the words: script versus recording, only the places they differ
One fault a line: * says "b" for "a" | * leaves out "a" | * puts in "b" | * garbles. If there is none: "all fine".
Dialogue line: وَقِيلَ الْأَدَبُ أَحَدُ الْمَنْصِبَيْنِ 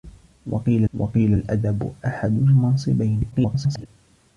* puts in "وَقِيلَ"
* garbles